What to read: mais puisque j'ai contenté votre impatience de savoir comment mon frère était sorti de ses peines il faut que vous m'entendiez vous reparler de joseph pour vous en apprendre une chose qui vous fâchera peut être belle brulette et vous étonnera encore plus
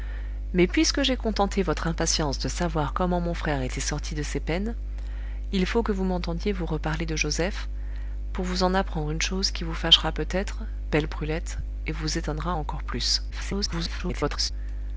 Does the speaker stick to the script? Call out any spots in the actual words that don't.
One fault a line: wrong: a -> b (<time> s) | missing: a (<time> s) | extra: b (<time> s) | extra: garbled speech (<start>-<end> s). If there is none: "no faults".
extra: garbled speech (13.3-14.5 s)